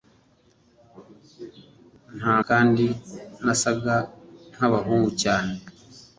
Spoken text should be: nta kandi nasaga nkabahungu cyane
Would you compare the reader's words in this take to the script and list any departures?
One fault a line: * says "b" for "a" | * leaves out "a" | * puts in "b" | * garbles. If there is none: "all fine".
all fine